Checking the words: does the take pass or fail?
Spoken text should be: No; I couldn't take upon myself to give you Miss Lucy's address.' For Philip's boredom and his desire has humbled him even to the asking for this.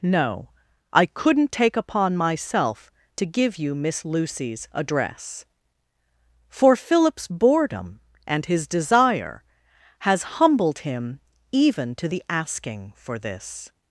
pass